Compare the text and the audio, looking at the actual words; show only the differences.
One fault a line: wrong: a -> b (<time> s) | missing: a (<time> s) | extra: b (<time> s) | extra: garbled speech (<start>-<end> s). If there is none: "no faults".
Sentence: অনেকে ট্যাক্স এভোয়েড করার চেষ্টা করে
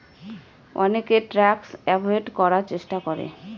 no faults